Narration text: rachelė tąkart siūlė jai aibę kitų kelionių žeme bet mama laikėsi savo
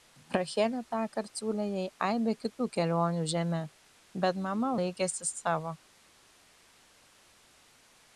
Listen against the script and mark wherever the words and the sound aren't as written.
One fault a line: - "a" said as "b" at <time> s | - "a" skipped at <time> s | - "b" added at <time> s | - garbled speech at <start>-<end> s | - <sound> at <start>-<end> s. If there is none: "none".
none